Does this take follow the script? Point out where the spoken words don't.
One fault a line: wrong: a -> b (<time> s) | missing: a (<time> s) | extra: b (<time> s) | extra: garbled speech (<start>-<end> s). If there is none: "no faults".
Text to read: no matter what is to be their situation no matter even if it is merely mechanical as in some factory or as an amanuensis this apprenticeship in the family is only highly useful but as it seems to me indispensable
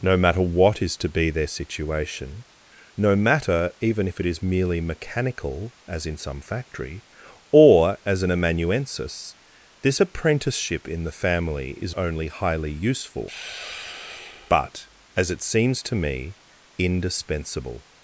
no faults